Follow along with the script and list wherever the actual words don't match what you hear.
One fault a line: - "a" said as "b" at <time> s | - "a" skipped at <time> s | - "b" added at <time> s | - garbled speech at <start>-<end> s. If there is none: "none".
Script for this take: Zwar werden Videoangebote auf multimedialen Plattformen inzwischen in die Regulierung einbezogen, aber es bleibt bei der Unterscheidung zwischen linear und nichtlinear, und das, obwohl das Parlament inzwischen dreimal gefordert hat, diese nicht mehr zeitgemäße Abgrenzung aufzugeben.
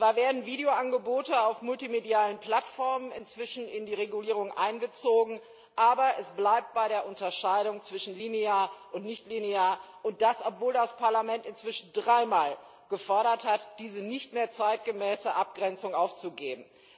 none